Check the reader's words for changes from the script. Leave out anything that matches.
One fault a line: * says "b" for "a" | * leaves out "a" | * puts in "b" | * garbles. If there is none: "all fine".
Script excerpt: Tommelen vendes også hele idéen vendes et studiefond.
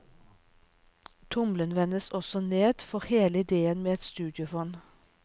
* puts in "ned for"
* says "med" for "vendes"